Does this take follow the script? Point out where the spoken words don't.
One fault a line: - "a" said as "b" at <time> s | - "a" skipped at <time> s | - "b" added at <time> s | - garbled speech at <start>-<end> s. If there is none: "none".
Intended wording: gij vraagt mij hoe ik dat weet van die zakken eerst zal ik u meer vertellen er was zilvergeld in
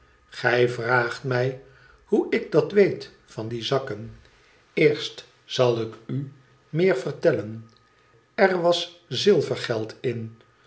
none